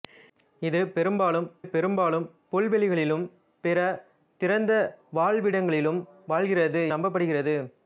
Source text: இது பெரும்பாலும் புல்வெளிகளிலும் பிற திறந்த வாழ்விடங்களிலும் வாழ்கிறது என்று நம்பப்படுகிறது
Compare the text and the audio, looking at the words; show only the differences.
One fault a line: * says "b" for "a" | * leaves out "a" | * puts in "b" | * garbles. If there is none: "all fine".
* puts in "பெரும்பாலும்"
* leaves out "என்று"